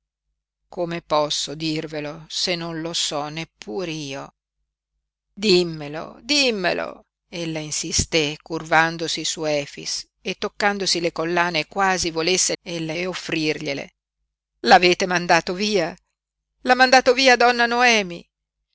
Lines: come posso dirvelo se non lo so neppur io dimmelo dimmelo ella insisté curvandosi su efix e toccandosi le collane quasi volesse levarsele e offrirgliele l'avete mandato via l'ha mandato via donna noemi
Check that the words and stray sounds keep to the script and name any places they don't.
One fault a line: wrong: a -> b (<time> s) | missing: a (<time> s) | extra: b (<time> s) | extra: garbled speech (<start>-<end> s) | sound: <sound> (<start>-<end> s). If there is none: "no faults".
wrong: levarsele -> ella (12.6 s)